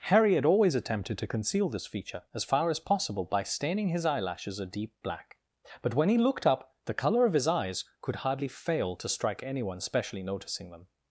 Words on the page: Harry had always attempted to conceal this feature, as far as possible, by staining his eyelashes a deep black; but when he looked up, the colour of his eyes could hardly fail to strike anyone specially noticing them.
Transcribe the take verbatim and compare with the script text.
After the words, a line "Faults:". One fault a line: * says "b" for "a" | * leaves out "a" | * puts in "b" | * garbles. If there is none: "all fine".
Harry had always attempted to conceal this feature, as far as possible, by staining his eyelashes a deep black; but when he looked up, the colour of his eyes could hardly fail to strike anyone specially noticing them.
Faults:
all fine